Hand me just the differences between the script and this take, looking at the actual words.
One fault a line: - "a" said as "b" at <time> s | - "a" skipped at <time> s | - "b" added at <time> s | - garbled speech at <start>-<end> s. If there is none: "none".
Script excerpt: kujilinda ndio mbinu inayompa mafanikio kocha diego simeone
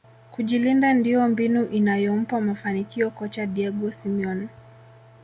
none